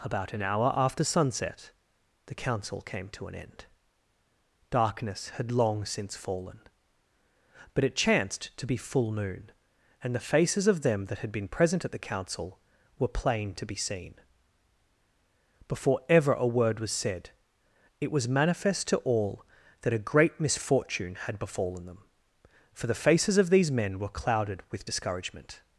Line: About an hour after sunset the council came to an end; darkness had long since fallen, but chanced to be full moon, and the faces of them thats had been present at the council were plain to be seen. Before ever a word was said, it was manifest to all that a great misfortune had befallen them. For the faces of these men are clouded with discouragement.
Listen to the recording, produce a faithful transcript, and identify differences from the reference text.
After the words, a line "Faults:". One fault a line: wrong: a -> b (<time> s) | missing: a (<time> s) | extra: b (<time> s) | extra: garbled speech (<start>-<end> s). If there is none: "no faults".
About an hour after sunset the council came to an end; darkness had long since fallen, but it chanced to be full moon, and the faces of them that had been present at the council were plain to be seen. Before ever a word was said, it was manifest to all that a great misfortune had befallen them. For the faces of these men were clouded with discouragement.
Faults:
extra: it (7.8 s)
wrong: thats -> that (11.1 s)
wrong: are -> were (24.0 s)